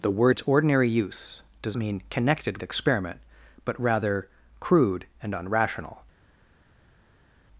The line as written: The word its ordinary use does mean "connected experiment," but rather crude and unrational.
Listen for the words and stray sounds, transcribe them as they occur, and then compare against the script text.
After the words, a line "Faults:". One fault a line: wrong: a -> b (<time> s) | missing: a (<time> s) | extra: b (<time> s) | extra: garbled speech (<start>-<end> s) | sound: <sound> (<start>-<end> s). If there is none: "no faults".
The word its ordinary use does mean "connected experiment," but rather crude and unrational.
Faults:
no faults